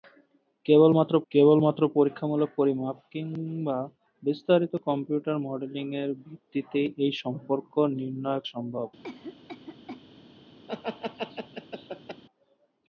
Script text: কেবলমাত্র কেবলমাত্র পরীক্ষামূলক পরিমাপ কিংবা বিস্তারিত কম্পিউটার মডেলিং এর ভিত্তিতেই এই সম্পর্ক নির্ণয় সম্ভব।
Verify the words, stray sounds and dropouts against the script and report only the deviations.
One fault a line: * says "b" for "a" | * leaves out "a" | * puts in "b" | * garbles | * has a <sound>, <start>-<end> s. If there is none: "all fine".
* has a cough, 9.0-10.0 s
* has a laugh, 10.7-12.2 s